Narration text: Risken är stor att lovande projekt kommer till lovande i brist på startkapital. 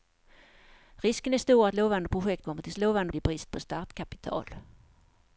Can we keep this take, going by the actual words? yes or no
yes